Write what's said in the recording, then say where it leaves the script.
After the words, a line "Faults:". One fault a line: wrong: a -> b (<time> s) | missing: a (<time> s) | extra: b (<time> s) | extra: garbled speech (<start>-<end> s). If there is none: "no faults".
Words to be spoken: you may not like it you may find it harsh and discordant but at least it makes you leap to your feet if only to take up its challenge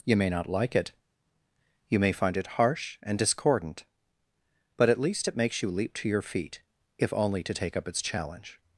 you may not like it you may find it harsh and discordant but at least it makes you leap to your feet if only to take up its challenge
Faults:
no faults